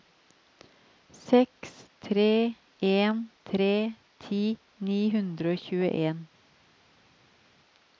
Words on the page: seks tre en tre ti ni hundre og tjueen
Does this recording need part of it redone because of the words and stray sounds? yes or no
no